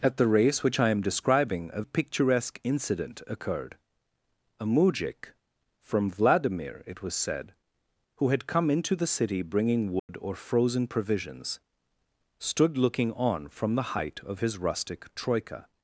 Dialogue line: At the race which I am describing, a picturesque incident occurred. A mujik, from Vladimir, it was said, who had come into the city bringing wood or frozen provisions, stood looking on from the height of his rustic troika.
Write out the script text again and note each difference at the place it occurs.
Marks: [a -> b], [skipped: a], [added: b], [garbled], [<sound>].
At the race which I am describing, a picturesque incident occurred. A mujik, from Vladimir, it was said, who had come into the city bringing wood [dropout] or frozen provisions, stood looking on from the height of his rustic troika.